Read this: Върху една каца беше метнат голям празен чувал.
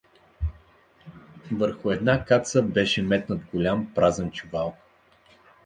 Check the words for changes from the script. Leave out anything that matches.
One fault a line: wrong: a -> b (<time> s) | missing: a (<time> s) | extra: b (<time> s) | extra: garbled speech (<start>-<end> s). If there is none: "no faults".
no faults